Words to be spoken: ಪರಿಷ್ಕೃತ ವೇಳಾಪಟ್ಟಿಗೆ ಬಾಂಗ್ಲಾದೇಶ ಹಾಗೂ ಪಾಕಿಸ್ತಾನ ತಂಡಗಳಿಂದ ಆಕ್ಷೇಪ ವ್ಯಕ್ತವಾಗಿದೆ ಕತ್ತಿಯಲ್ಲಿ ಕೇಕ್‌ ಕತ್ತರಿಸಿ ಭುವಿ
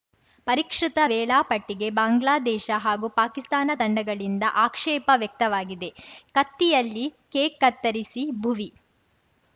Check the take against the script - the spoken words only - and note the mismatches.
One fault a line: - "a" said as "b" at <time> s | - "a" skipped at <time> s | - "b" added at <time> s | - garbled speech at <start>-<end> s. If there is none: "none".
none